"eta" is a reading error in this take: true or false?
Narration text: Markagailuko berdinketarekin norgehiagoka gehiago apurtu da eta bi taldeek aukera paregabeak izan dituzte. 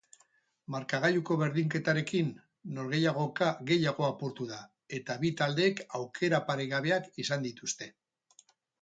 false